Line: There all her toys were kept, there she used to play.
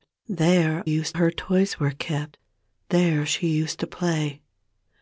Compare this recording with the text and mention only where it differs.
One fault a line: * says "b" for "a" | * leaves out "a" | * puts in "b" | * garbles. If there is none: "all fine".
* says "used" for "all"